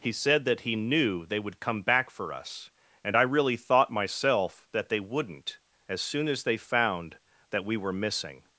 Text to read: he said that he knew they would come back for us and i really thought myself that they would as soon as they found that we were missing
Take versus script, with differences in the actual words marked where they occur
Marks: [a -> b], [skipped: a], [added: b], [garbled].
he said that he knew they would come back for us and i really thought myself that they [would -> wouldn't] as soon as they found that we were missing